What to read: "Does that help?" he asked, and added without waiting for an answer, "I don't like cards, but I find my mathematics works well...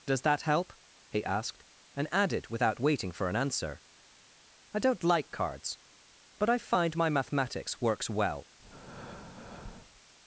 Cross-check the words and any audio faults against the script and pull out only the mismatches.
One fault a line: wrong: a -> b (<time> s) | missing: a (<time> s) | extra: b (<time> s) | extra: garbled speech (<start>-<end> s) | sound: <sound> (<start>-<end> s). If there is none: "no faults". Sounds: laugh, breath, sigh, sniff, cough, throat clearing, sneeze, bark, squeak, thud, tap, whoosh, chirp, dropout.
sound: breath (8.6-10.0 s)